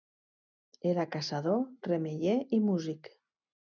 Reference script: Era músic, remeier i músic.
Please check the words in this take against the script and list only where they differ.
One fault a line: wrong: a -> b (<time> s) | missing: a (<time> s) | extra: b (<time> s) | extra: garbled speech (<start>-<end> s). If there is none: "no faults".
wrong: músic -> caçador (1.2 s)